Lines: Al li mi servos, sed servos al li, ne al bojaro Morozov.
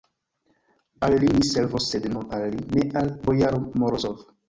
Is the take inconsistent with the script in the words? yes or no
yes